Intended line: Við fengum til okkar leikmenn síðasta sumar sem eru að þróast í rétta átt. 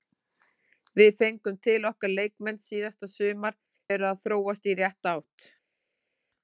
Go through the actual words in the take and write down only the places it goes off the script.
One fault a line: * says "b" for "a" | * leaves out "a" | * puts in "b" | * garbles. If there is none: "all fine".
* leaves out "sem"